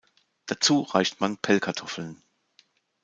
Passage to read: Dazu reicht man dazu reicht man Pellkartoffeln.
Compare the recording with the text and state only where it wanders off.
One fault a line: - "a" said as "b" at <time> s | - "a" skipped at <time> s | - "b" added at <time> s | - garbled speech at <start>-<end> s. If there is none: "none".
- "dazu reicht man" skipped at 1.4 s